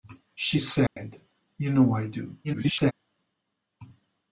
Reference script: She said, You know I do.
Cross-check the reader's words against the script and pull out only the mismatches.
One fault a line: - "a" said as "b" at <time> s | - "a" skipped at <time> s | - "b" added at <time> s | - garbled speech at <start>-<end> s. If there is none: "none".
- garbled speech at 2.4-2.9 s